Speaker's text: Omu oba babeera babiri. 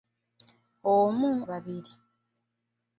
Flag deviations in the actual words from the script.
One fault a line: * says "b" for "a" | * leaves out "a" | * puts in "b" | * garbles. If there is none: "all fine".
* leaves out "oba babeera"